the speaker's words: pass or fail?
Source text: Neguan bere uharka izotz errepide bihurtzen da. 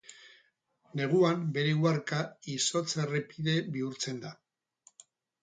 pass